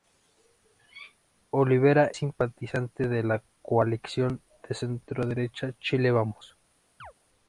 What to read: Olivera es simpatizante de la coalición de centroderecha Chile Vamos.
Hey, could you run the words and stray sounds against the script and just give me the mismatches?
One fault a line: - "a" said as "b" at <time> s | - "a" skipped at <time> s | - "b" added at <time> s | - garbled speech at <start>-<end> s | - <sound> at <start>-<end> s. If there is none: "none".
- "es" skipped at 2.1 s
- chirp at 7.0-7.1 s